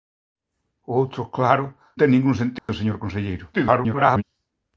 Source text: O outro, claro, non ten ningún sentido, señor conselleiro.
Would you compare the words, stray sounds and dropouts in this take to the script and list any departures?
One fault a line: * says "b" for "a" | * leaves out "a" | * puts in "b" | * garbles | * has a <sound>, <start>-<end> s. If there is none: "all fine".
* leaves out "non"
* has a dropout, 2.6-2.7 s
* garbles